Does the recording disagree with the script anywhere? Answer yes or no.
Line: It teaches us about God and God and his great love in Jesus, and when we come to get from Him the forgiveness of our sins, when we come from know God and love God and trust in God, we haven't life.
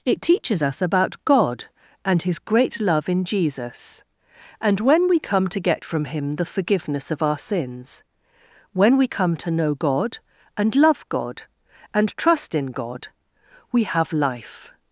yes